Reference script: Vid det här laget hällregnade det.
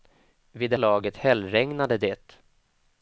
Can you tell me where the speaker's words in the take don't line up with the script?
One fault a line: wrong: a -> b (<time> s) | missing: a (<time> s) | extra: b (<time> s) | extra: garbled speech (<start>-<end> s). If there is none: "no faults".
missing: här (0.8 s)